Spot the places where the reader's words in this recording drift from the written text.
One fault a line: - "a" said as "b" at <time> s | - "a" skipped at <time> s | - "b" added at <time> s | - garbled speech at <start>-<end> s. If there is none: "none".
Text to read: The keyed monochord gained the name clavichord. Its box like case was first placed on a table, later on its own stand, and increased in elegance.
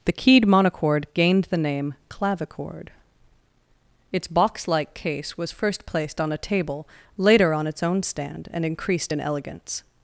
none